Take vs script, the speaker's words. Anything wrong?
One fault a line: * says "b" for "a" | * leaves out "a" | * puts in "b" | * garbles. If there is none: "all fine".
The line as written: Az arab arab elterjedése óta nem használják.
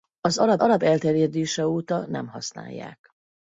all fine